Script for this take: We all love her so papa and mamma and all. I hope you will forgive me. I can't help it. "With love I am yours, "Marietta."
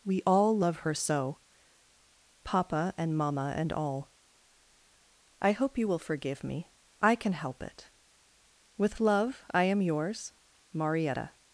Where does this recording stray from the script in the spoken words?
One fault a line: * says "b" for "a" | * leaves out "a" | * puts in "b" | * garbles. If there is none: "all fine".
* says "can" for "can't"